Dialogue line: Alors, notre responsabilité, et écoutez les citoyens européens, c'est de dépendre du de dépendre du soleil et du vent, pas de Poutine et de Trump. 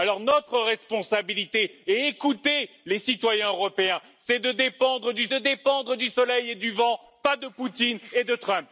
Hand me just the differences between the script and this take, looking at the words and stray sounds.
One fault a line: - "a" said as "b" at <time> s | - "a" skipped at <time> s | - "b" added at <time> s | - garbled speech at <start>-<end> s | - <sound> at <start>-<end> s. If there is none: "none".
none